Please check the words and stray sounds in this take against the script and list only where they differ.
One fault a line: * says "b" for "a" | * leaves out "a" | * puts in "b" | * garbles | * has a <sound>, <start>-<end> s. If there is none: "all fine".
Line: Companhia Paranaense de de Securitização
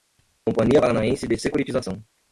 * leaves out "de"